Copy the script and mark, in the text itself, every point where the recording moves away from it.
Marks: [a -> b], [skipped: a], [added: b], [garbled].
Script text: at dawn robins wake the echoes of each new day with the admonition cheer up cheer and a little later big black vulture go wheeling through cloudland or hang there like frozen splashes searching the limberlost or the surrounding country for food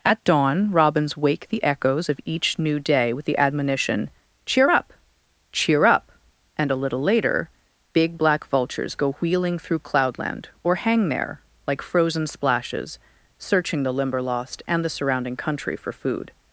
at dawn robins wake the echoes of each new day with the admonition cheer up cheer [added: up] and a little later big black [vulture -> vultures] go wheeling through cloudland or hang there like frozen splashes searching the limberlost [or -> and] the surrounding country for food